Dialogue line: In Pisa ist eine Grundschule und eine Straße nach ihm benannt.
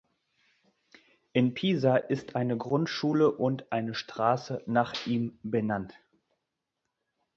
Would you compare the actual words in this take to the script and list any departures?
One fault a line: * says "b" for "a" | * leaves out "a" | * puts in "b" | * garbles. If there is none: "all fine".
all fine